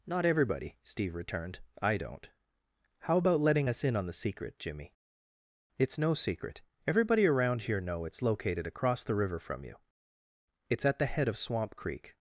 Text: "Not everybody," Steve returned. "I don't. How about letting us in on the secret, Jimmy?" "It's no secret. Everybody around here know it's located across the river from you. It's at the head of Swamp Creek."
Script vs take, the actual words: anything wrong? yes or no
no